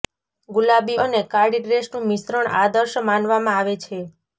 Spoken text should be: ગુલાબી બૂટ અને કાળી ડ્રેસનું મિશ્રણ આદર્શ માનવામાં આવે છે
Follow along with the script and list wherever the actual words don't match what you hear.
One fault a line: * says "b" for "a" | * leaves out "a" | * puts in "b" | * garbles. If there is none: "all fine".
* leaves out "બૂટ"